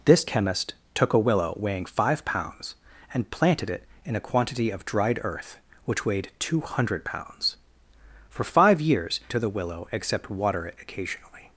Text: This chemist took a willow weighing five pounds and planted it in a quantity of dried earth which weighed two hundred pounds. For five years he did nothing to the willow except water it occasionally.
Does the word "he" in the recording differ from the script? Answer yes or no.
yes